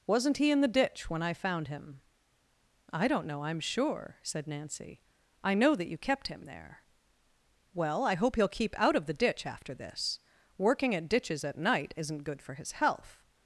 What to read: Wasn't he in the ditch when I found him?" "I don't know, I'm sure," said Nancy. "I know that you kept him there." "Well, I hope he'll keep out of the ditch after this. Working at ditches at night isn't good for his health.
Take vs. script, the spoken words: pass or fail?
pass